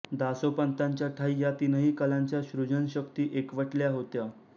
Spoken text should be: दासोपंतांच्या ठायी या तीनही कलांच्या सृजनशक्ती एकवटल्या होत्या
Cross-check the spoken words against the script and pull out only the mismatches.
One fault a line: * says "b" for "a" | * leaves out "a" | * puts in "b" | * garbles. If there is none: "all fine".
all fine